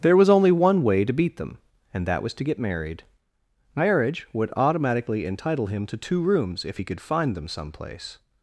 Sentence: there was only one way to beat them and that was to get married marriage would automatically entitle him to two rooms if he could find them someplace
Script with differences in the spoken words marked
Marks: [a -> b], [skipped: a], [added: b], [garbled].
there was only one way to beat them and that was to get married marriage would automatically entitle him to two rooms if he could find them someplace